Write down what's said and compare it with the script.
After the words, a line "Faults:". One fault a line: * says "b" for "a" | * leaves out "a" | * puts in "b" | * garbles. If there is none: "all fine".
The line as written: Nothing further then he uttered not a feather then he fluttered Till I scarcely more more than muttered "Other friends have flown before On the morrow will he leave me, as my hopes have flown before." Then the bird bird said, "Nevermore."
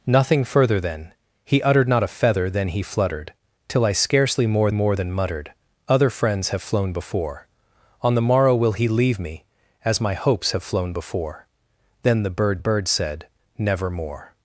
Nothing further then he uttered not a feather then he fluttered Till I scarcely more more than muttered "Other friends have flown before On the morrow will he leave me, as my hopes have flown before." Then the bird bird said, "Nevermore."
Faults:
all fine